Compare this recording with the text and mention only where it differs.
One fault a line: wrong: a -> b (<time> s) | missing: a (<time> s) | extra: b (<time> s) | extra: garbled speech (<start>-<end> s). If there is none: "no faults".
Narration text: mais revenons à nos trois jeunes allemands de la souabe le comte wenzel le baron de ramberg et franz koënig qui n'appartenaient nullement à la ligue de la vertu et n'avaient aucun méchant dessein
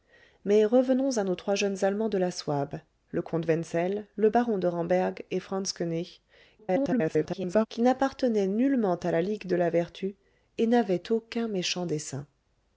extra: garbled speech (6.6-7.7 s)